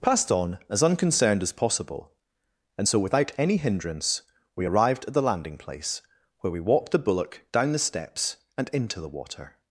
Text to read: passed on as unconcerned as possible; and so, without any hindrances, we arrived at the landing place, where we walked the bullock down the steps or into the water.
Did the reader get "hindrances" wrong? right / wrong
wrong